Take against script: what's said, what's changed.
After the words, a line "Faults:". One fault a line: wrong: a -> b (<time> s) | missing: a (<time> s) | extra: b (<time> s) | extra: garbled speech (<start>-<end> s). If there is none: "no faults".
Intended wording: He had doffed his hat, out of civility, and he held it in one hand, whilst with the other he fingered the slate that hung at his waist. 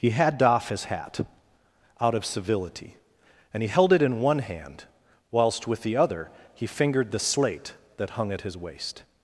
He had doff his hat, out of civility, and he held it in one hand, whilst with the other he fingered the slate that hung at his waist.
Faults:
wrong: doffed -> doff (0.4 s)